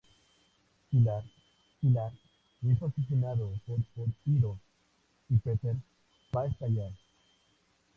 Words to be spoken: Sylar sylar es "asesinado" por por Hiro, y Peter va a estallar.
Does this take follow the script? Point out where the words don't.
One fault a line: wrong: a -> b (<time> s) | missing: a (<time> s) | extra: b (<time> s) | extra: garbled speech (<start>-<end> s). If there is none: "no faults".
no faults